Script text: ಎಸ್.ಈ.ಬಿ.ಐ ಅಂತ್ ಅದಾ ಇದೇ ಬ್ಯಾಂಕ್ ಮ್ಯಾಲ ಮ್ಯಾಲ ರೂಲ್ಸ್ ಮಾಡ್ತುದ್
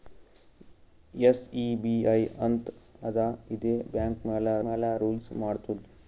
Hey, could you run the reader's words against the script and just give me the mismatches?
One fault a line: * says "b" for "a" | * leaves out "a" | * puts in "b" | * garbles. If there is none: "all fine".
all fine